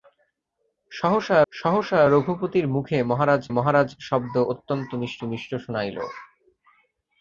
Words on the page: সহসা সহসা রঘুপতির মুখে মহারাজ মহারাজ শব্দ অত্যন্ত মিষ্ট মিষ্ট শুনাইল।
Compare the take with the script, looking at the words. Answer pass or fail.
pass